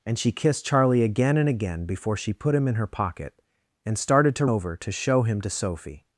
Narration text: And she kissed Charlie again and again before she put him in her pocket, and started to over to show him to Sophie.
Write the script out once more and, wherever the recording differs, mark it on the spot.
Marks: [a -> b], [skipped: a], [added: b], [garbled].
And she kissed Charlie again and again before she put him in her pocket, and started to over to show him to Sophie.